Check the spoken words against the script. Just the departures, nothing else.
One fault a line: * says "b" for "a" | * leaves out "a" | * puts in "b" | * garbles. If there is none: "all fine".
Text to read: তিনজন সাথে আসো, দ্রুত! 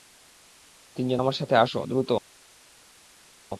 * puts in "আমার"